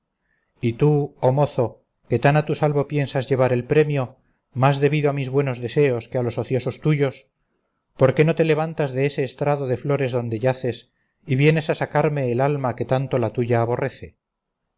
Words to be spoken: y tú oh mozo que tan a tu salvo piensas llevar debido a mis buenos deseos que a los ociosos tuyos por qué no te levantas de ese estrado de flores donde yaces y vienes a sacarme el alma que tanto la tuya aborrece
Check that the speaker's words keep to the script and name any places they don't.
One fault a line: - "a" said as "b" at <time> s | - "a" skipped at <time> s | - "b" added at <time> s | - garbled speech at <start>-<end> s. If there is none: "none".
- "el premio más" added at 3.5 s